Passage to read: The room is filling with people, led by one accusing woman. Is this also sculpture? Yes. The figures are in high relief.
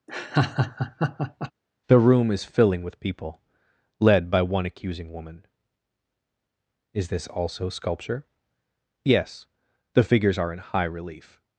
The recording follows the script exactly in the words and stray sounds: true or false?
false